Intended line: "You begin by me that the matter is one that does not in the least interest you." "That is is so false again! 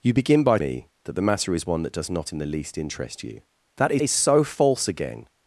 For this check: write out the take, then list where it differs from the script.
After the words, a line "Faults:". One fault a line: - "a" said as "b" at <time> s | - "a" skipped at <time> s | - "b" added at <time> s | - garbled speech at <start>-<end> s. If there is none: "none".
"You begin by me that the matter is one that does not in the least interest you." "That is is so false again!
Faults:
none